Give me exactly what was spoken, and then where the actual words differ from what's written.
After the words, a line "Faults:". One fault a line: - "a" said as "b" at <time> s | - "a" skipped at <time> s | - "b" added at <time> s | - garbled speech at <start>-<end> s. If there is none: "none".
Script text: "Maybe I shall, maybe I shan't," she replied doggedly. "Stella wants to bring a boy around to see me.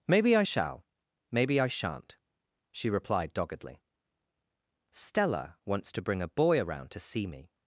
"Maybe I shall, maybe I shan't," she replied doggedly. "Stella wants to bring a boy around to see me.
Faults:
none